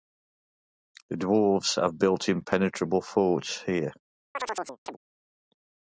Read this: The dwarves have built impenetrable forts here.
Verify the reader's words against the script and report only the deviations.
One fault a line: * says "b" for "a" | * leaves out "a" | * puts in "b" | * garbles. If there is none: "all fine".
all fine